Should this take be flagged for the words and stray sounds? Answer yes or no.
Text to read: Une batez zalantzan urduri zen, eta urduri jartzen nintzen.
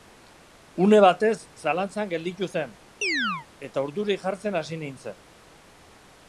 yes